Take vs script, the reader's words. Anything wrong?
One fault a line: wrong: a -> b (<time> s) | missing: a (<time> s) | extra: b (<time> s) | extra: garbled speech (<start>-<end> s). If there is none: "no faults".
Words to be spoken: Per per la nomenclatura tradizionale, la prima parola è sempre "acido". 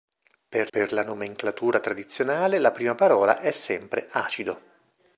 no faults